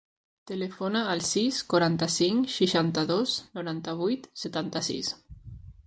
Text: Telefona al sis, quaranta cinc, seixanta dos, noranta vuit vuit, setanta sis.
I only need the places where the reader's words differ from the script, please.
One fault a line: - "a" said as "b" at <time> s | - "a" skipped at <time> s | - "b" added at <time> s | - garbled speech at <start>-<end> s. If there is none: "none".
- "vuit" skipped at 4.3 s